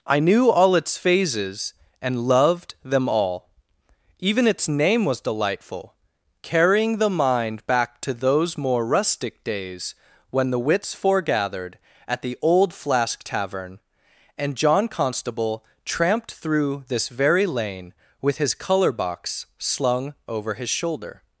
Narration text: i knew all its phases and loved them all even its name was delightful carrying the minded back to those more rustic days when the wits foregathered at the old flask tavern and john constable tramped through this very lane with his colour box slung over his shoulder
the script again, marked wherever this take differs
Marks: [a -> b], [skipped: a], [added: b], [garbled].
i knew all its phases and loved them all even its name was delightful carrying the [minded -> mind] back to those more rustic days when the wits foregathered at the old flask tavern and john constable tramped through this very lane with his colour box slung over his shoulder